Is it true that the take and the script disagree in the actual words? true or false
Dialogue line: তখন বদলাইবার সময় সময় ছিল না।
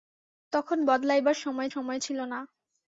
false